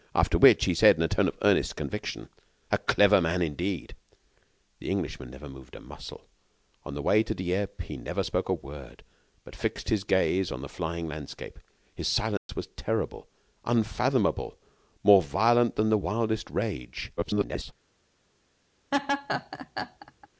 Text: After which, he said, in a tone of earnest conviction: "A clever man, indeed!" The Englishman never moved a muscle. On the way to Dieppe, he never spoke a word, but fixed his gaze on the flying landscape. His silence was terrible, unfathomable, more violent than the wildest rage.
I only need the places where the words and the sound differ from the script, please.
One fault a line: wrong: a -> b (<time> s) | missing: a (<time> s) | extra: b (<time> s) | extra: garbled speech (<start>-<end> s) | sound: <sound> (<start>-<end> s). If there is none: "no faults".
sound: dropout (12.4-12.5 s)
extra: garbled speech (17.2-17.7 s)
sound: laugh (18.9-20.3 s)